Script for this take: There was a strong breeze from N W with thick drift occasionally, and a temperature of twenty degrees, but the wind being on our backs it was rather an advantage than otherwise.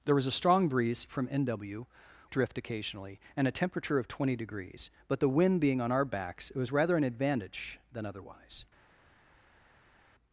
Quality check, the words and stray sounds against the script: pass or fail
fail